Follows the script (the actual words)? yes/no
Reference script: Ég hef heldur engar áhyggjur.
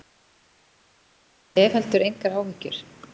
yes